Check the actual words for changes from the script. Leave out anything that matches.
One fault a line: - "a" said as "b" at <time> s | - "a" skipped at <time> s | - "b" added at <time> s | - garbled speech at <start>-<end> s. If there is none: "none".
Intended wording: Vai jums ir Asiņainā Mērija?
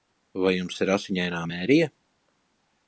none